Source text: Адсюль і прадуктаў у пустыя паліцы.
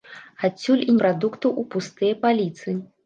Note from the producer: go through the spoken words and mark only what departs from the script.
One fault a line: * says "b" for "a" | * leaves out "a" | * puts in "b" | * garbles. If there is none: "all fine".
all fine